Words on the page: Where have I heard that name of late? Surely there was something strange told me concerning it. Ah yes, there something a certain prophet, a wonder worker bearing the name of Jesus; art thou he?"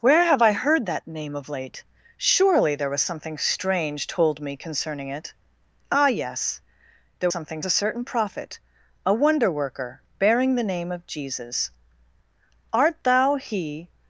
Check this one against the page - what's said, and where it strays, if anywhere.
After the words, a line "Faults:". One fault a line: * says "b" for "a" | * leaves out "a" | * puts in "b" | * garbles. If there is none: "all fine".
Where have I heard that name of late? Surely there was something strange told me concerning it. Ah yes, there something a certain prophet, a wonder worker bearing the name of Jesus; art thou he?"
Faults:
all fine